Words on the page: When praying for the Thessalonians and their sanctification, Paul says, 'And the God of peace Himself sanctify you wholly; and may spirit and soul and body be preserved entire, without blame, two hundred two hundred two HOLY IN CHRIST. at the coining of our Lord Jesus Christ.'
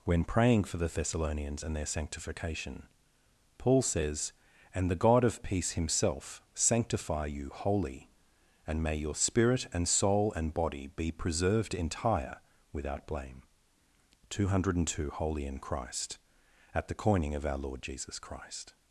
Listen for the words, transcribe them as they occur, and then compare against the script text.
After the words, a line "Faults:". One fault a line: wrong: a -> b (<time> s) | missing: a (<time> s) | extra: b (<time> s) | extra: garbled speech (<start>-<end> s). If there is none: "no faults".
When praying for the Thessalonians and their sanctification, Paul says, 'And the God of peace Himself sanctify you wholly; and may your spirit and soul and body be preserved entire, without blame, two hundred two HOLY IN CHRIST. at the coining of our Lord Jesus Christ.'
Faults:
extra: your (8.9 s)
missing: hundred two (15.1 s)